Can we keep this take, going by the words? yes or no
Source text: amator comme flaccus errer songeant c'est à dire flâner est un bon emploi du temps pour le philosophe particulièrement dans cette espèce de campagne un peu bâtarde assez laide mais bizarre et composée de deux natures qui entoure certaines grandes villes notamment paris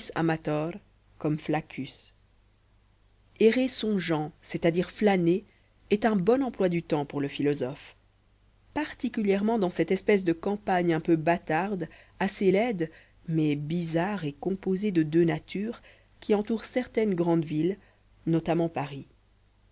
yes